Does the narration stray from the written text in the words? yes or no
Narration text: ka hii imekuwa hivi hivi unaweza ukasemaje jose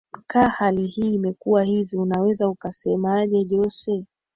yes